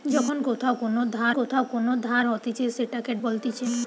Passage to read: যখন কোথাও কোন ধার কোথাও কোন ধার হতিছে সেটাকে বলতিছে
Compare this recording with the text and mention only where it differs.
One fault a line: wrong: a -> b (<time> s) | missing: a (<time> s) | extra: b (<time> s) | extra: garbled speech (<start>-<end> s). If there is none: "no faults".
no faults